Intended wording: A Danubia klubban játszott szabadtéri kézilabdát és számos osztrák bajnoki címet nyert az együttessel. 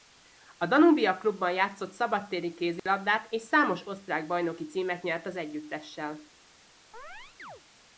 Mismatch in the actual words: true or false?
false